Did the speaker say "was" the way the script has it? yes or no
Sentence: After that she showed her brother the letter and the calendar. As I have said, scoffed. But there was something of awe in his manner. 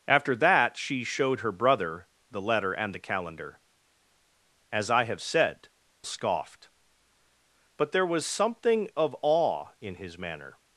yes